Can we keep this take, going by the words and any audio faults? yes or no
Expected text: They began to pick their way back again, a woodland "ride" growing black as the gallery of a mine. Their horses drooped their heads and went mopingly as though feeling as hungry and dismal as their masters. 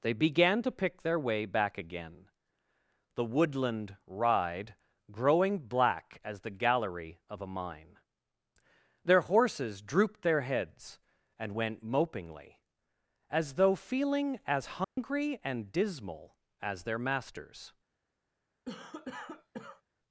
no